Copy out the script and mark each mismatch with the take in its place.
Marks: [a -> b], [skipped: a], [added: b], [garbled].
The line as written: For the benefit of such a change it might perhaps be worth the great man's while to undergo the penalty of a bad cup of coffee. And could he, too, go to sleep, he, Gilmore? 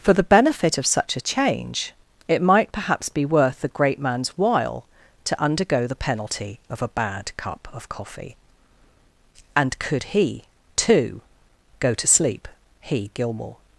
For the benefit of such a change it might perhaps be worth the great man's while to undergo the penalty of a bad cup of coffee. And could he, too, go to sleep, he, Gilmore?